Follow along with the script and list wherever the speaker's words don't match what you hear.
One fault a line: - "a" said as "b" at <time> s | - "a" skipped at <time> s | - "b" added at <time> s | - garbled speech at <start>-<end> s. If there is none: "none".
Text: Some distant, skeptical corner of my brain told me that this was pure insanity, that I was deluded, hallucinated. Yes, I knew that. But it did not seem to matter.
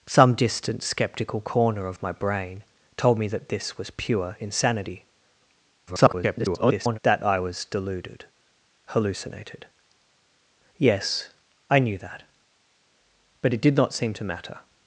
- garbled speech at 5.9-7.0 s